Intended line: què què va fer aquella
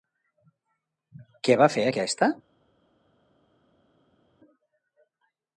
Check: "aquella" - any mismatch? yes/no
yes